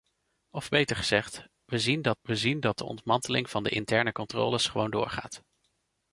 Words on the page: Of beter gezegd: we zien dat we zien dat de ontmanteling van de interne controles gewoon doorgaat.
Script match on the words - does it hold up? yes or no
yes